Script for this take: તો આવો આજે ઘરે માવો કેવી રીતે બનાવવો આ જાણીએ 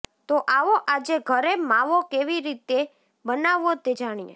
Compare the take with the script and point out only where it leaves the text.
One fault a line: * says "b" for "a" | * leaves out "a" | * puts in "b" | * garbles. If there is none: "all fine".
* says "તે" for "આ"